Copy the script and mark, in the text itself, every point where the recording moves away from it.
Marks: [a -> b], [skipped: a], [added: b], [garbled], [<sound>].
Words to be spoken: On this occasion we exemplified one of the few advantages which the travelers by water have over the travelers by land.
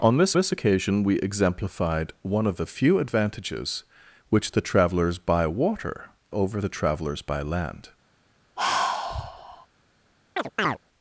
On this [added: this] occasion we exemplified one of the few advantages which the travelers by water [skipped: have] over the travelers by land. [sigh] [chirp]